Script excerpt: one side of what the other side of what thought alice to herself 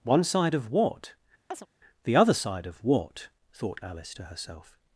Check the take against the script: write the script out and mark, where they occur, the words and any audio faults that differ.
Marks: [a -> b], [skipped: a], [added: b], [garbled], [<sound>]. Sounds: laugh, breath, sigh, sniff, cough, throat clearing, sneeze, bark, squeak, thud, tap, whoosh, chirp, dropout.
one side of what [chirp] the other side of what thought alice to herself